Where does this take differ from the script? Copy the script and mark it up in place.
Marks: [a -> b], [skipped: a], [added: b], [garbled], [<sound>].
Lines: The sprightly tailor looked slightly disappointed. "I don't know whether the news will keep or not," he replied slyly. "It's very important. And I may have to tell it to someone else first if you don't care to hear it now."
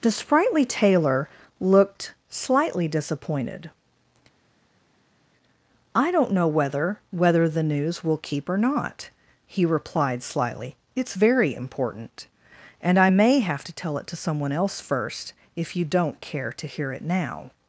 The sprightly tailor looked slightly disappointed. "I don't know whether [added: whether] the news will keep or not," he replied slyly. "It's very important. And I may have to tell it to someone else first if you don't care to hear it now."